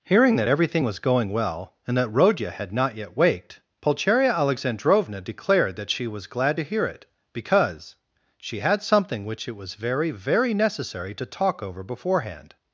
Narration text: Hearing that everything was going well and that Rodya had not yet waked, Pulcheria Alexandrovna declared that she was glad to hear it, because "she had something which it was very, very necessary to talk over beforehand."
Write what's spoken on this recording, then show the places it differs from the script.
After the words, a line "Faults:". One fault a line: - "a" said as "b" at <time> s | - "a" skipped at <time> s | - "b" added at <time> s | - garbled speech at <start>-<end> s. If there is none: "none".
Hearing that everything was going well and that Rodya had not yet waked, Pulcheria Alexandrovna declared that she was glad to hear it, because "she had something which it was very, very necessary to talk over beforehand."
Faults:
none